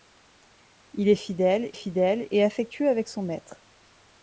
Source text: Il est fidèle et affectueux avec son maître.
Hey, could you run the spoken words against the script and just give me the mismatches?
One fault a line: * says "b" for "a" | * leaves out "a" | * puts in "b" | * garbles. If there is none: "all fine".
* puts in "fidèle"